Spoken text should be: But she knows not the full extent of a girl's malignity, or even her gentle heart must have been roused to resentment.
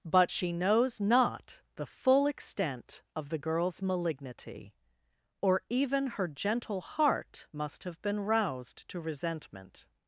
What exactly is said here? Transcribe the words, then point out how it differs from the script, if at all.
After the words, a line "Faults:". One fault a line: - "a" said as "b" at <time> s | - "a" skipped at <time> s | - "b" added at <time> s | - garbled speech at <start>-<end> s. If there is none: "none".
But she knows not the full extent of the girl's malignity, or even her gentle heart must have been roused to resentment.
Faults:
- "a" said as "the" at 3.3 s